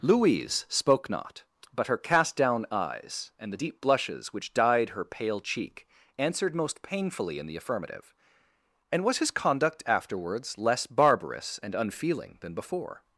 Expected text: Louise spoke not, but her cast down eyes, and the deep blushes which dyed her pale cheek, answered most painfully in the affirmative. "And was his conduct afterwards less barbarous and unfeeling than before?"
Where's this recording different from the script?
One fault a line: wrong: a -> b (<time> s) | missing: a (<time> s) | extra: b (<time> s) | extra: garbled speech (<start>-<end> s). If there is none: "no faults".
no faults